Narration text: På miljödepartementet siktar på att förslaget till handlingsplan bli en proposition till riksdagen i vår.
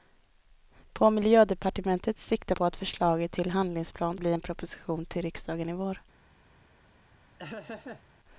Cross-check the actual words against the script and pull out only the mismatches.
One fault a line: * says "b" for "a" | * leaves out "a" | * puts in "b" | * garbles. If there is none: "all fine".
all fine